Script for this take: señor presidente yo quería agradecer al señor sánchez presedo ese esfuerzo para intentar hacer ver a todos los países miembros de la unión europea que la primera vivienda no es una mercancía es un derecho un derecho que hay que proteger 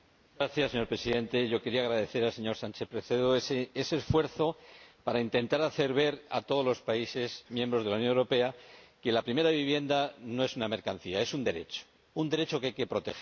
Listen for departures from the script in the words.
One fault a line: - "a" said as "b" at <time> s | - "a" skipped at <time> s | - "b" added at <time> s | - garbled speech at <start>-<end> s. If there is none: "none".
none